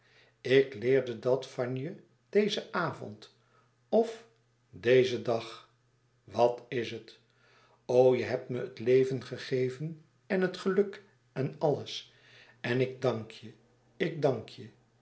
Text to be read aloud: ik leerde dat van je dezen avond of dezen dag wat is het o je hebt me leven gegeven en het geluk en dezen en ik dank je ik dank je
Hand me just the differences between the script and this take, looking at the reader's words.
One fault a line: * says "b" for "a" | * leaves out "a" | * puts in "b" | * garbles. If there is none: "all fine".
* puts in "het"
* says "alles" for "dezen"